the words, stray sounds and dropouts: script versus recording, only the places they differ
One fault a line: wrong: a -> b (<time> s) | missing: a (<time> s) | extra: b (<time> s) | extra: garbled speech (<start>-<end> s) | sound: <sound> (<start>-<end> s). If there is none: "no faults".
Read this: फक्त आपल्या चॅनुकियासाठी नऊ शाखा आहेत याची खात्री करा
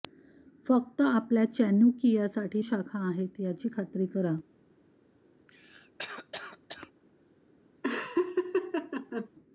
missing: नऊ (2.6 s)
sound: cough (5.5-6.9 s)
sound: laugh (7.8-9.3 s)